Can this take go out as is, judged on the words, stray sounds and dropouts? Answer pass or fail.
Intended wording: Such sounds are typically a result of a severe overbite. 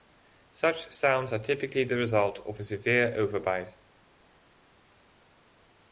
fail